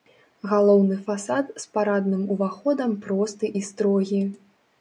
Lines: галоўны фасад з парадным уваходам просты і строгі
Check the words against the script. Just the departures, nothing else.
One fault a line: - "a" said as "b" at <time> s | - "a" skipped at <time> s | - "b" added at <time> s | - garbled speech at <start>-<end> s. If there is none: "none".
none